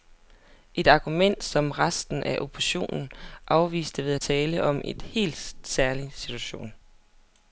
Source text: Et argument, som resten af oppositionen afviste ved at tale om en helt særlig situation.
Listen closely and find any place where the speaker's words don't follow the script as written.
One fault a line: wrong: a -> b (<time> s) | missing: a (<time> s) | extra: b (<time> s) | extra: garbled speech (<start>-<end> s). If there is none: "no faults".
no faults